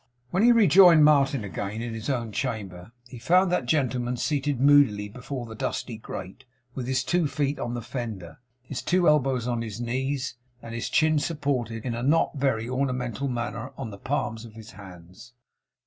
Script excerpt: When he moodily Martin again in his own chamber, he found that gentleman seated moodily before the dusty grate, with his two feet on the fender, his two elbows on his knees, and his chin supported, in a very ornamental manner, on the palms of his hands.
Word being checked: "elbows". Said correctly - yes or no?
yes